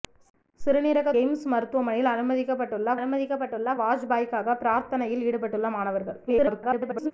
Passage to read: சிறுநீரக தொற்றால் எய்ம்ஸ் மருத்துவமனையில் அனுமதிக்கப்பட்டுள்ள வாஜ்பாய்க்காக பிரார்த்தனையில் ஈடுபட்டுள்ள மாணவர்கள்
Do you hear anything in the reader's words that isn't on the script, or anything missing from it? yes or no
yes